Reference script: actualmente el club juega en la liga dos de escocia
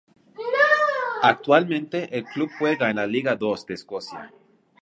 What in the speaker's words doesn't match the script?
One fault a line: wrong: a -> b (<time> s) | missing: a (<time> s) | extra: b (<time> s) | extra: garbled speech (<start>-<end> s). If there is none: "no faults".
no faults